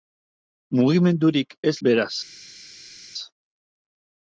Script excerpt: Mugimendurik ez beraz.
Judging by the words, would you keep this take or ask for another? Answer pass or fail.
pass